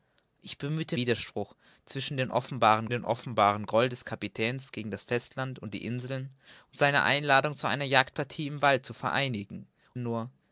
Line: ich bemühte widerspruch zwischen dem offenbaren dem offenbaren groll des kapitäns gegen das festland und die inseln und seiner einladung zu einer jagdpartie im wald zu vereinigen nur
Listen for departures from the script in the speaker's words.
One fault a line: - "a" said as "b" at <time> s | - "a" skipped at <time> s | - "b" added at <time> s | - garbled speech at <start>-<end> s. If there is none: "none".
none